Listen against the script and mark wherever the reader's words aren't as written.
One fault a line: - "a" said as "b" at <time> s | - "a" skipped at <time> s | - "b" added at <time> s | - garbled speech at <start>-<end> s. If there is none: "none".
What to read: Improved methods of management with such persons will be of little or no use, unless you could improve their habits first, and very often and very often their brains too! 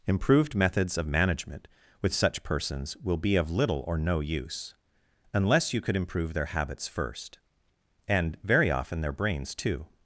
- "and very often" skipped at 9.0 s